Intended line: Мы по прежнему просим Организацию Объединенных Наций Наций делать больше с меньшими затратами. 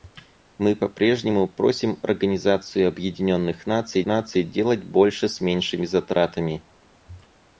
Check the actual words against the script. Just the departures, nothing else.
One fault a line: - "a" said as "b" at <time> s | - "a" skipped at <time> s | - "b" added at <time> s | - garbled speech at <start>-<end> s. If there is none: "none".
none